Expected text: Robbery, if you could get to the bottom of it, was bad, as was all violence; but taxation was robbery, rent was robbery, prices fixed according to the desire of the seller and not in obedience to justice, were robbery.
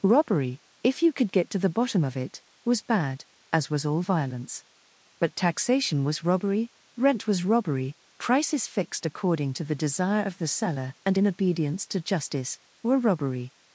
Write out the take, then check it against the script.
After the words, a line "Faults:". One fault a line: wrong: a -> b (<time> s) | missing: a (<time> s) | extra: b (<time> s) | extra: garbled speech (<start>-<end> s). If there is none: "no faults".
Robbery, if you could get to the bottom of it, was bad, as was all violence; but taxation was robbery, rent was robbery, prices fixed according to the desire of the seller and in obedience to justice, were robbery.
Faults:
missing: not (11.2 s)